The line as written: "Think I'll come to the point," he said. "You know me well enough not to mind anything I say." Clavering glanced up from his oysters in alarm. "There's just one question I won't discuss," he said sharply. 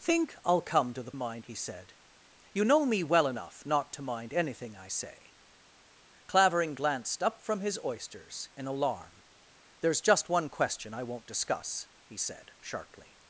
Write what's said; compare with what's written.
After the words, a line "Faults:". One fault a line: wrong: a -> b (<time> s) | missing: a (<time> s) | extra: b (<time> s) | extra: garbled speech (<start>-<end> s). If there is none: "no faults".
"Think I'll come to the mind," he said. "You know me well enough not to mind anything I say." Clavering glanced up from his oysters in alarm. "There's just one question I won't discuss," he said sharply.
Faults:
wrong: point -> mind (1.1 s)